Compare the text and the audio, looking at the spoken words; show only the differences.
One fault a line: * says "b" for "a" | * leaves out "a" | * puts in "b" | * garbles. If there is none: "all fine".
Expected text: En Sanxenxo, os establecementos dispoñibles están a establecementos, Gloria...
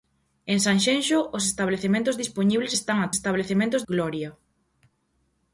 all fine